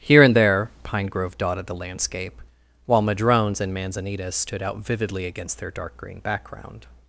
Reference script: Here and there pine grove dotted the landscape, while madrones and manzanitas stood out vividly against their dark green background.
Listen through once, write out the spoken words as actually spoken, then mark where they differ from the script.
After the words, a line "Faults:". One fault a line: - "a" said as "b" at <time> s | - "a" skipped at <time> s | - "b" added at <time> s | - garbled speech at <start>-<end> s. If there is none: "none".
Here and there pine grove dotted the landscape, while madrones and manzanitas stood out vividly against their dark green background.
Faults:
none